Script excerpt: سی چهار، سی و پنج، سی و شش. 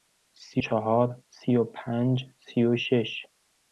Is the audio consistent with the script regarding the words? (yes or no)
yes